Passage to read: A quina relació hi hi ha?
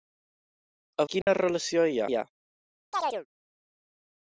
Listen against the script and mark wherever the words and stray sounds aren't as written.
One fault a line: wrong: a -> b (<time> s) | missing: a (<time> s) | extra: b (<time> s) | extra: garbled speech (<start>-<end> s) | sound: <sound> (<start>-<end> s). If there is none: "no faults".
sound: dropout (1.2-1.3 s)
sound: chirp (2.9-3.3 s)